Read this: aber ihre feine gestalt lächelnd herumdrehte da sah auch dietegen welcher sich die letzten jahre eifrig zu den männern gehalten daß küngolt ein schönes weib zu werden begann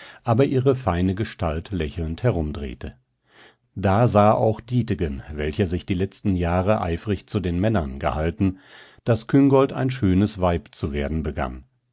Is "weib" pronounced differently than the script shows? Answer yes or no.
no